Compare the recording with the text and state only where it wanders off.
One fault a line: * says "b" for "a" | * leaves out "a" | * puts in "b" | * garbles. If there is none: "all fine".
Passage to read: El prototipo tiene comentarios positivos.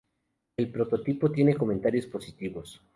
all fine